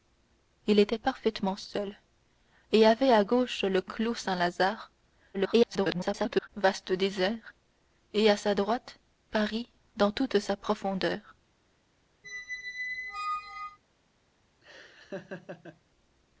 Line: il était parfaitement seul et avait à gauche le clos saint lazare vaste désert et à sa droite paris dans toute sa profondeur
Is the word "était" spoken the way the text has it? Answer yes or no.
yes